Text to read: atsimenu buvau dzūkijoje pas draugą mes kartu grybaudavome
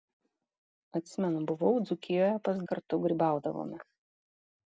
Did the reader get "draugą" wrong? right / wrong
wrong